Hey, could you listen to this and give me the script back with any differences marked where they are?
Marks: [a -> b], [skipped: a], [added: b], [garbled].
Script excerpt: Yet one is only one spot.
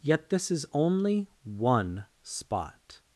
Yet [one -> this] is only one spot.